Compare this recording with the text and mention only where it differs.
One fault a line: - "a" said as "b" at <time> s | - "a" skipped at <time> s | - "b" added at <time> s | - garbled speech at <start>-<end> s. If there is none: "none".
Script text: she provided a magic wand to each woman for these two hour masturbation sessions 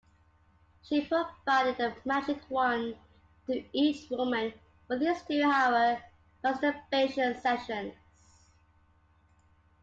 none